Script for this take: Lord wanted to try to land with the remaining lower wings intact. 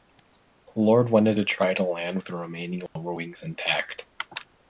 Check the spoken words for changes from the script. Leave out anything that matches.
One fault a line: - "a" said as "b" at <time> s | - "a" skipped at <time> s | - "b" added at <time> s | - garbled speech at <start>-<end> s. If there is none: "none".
none